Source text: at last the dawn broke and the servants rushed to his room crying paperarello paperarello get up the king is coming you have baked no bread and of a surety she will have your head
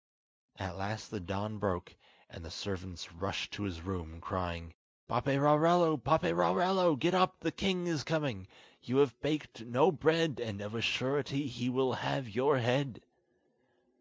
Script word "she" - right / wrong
wrong